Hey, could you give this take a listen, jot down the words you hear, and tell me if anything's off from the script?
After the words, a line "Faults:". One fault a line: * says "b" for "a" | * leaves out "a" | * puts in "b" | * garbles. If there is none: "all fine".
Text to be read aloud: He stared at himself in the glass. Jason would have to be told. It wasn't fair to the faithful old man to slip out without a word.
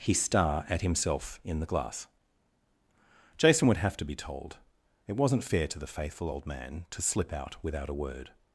He star at himself in the glass. Jason would have to be told. It wasn't fair to the faithful old man to slip out without a word.
Faults:
* says "star" for "stared"